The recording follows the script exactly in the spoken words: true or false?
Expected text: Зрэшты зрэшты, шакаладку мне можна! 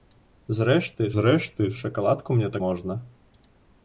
true